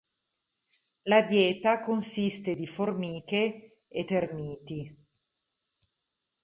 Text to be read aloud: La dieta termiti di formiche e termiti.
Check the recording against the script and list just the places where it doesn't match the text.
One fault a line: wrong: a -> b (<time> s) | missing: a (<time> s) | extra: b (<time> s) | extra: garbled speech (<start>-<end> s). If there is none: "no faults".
wrong: termiti -> consiste (1.8 s)